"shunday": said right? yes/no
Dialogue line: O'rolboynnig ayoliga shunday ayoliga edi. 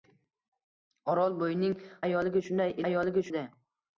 yes